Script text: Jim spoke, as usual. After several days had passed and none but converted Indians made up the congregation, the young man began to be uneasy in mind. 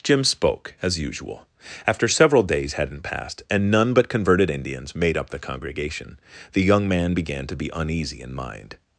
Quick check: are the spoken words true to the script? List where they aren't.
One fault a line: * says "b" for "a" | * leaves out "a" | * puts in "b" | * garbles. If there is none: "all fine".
* says "hadn't" for "had"